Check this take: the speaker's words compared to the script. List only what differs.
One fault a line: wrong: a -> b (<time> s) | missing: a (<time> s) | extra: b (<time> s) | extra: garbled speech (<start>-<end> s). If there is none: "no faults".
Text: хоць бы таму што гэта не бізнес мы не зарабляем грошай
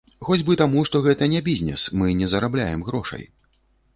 no faults